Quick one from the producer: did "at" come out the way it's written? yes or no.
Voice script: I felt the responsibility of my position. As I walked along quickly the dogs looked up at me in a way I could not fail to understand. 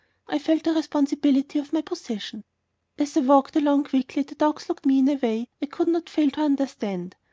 no